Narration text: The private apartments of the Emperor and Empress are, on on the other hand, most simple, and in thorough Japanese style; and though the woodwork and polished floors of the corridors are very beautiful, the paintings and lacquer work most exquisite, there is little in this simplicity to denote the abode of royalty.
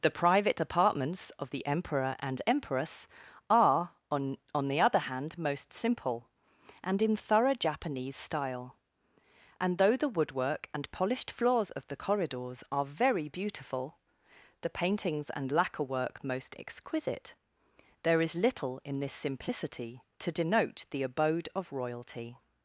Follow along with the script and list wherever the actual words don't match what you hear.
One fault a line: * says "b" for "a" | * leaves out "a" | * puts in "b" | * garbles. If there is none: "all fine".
all fine